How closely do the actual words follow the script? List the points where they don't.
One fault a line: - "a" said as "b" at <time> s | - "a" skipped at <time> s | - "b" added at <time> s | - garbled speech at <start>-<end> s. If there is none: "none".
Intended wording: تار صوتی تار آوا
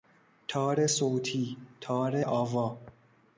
none